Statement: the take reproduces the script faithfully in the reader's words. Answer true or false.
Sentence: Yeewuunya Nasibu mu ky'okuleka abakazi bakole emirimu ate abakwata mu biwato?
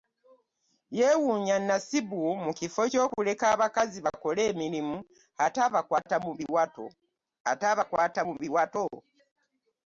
false